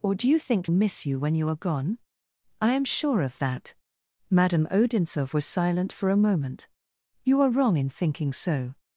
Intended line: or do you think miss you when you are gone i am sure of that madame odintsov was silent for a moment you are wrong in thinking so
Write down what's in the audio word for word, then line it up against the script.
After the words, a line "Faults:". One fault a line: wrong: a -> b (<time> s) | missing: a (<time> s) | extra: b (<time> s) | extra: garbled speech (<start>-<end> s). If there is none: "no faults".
or do you think miss you when you are gone i am sure of that madame odintsov was silent for a moment you are wrong in thinking so
Faults:
no faults